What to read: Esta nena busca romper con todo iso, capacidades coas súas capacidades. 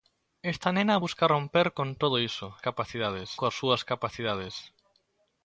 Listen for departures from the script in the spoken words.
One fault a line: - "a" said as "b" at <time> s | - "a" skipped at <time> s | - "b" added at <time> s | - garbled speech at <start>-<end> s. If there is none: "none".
none